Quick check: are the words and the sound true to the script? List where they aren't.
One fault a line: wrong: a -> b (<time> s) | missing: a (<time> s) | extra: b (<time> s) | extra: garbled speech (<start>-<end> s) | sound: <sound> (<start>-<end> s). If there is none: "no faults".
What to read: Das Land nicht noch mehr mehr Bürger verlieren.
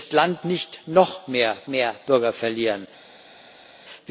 no faults